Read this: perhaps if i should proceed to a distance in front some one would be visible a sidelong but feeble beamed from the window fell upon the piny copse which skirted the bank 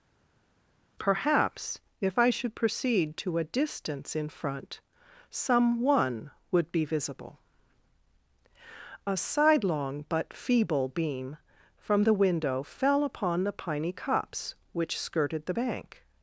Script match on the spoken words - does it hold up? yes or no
no